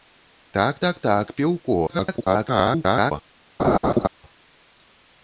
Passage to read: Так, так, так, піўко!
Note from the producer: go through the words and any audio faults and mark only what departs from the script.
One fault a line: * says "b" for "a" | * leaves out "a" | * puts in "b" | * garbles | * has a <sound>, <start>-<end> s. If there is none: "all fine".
* garbles
* has a laugh, 3.6-4.1 s